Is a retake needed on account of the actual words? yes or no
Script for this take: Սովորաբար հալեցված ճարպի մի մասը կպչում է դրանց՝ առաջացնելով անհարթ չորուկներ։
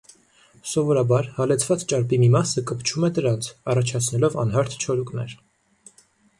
no